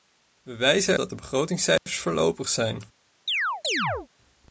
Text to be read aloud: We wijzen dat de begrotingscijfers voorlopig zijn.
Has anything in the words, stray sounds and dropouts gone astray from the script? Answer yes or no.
yes